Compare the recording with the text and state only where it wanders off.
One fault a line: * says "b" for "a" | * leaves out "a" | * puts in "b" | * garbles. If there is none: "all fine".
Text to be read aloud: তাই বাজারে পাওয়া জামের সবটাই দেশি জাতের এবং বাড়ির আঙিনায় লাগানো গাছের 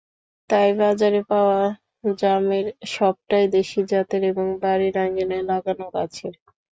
all fine